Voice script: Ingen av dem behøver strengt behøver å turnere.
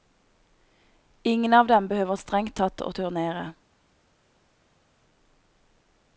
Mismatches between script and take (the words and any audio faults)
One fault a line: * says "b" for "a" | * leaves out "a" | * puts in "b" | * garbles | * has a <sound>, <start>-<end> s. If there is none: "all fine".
* says "tatt" for "behøver"